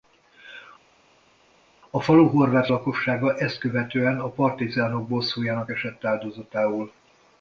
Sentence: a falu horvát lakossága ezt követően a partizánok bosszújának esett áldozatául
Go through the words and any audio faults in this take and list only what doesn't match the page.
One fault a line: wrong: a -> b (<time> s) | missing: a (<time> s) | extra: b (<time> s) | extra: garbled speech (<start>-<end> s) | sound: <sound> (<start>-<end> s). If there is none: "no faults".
no faults